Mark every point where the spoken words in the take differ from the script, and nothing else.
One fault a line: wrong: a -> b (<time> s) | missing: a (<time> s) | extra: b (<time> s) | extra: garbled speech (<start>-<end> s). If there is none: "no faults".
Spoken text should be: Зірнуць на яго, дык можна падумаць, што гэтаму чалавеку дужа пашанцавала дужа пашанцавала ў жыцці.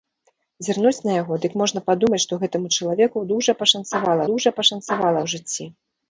no faults